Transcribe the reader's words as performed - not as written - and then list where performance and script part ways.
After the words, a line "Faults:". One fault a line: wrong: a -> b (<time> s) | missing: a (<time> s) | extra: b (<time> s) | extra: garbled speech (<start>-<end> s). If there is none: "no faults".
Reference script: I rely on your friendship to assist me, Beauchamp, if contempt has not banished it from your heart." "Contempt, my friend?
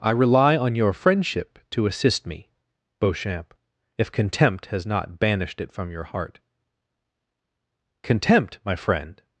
I rely on your friendship to assist me, Beauchamp, if contempt has not banished it from your heart." "Contempt, my friend?
Faults:
no faults